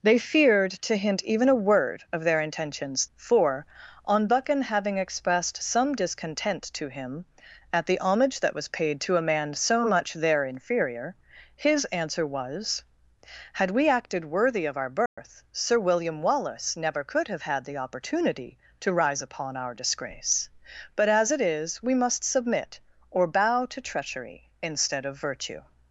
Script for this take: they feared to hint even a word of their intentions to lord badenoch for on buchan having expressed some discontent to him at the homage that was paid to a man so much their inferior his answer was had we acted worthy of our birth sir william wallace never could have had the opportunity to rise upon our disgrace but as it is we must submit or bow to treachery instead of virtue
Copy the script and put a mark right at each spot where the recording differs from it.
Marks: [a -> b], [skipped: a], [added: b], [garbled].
they feared to hint even a word of their intentions [skipped: to lord badenoch] for on buchan having expressed some discontent to him at the homage that was paid to a man so much their inferior his answer was had we acted worthy of our birth sir william wallace never could have had the opportunity to rise upon our disgrace but as it is we must submit or bow to treachery instead of virtue